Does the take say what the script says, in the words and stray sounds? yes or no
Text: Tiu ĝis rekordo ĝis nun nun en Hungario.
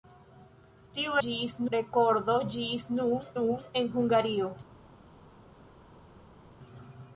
yes